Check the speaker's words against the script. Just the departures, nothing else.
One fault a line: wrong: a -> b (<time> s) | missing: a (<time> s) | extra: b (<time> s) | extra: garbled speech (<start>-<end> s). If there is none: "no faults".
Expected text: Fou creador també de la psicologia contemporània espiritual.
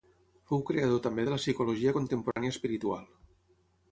no faults